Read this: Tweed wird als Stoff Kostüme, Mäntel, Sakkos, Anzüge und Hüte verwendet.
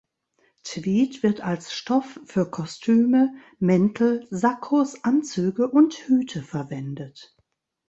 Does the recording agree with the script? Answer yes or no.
no